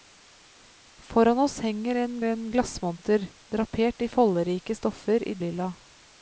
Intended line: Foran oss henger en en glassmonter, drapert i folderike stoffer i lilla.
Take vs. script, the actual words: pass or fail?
pass